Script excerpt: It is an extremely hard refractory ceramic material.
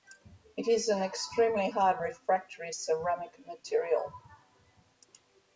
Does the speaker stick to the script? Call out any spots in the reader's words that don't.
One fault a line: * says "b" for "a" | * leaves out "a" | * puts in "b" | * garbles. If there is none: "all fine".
all fine